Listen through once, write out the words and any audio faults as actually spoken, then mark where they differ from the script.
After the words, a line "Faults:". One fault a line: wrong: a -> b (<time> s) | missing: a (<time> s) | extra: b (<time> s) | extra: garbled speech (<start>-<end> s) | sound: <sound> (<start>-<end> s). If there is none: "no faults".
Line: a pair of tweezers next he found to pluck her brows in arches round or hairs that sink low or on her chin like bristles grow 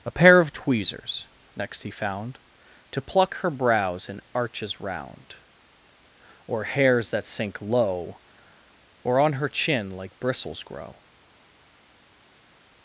a pair of tweezers next he found to pluck her brows in arches round or hairs that sink low or on her chin like bristles grow
Faults:
no faults